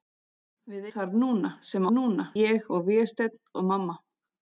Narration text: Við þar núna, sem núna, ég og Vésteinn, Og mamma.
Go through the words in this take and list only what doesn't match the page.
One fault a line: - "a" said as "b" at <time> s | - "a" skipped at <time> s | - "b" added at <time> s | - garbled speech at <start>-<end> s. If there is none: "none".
none